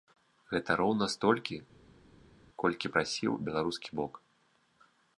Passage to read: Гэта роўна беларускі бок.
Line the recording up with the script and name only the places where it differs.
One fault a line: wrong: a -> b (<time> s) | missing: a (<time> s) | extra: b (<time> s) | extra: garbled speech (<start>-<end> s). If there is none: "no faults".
extra: столькі колькі прасіў (1.1 s)